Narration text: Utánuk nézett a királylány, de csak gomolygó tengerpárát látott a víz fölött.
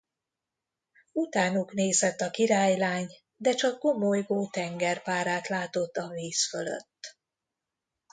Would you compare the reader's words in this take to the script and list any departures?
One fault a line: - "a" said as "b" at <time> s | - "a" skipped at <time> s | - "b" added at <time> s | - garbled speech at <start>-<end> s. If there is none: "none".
none